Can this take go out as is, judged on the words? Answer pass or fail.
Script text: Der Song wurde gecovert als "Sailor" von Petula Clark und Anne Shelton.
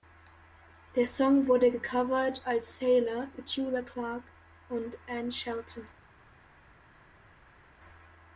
fail